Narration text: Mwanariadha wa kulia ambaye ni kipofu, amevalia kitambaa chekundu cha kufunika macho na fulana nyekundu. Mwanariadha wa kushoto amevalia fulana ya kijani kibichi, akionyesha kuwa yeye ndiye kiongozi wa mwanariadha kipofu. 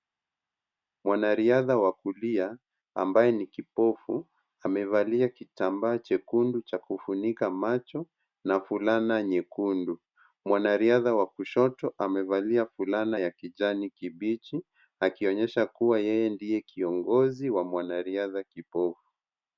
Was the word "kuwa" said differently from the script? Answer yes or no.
no